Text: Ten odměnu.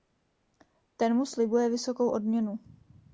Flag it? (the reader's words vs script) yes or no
yes